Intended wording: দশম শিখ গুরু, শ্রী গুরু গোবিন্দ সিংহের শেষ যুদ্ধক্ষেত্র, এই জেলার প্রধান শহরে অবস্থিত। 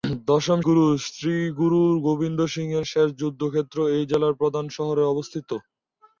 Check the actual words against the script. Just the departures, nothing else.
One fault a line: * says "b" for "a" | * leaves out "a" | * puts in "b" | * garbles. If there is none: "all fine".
* leaves out "শিখ"